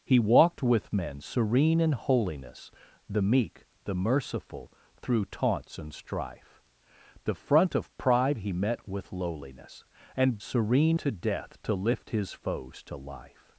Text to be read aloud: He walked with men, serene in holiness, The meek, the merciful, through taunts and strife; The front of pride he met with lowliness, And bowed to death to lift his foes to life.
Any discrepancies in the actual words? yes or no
yes